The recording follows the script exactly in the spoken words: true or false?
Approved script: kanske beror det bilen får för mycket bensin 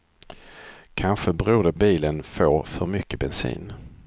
true